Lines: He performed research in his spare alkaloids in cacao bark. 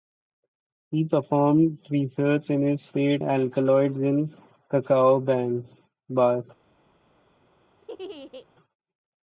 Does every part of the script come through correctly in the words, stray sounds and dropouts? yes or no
no